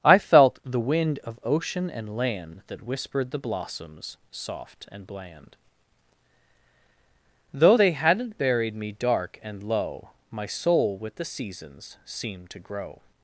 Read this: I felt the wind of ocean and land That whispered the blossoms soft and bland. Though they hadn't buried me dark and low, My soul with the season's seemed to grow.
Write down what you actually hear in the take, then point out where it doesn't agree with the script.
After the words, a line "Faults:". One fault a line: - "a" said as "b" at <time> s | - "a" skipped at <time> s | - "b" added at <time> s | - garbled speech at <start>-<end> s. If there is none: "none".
I felt the wind of ocean and land That whispered the blossoms soft and bland. Though they hadn't buried me dark and low, My soul with the season's seemed to grow.
Faults:
none